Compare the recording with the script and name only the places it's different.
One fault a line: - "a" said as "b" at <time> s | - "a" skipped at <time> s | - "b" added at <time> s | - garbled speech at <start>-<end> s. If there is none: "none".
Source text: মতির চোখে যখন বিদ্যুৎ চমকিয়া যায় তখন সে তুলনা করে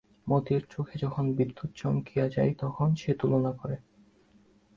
none